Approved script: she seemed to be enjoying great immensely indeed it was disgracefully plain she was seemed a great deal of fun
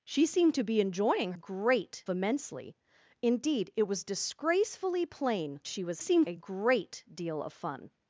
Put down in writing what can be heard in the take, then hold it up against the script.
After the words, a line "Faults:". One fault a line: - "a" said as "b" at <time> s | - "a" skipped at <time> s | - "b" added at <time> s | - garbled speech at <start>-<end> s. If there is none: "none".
she seemed to be enjoying great immensely indeed it was disgracefully plain she was seemed a great deal of fun
Faults:
none